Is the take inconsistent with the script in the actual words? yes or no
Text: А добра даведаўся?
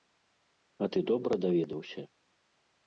yes